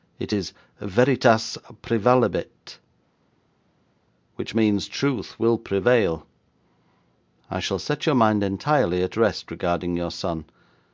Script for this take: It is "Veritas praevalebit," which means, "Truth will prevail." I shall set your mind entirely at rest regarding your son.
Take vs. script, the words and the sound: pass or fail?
pass